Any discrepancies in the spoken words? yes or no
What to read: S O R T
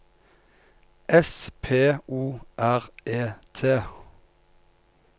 yes